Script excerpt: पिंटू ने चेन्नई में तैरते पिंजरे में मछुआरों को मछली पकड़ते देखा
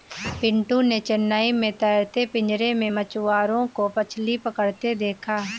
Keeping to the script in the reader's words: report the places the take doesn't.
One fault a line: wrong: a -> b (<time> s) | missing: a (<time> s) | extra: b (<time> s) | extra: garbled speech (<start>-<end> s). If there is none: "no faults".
no faults